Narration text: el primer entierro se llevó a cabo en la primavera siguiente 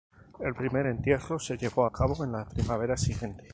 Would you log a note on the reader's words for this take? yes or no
no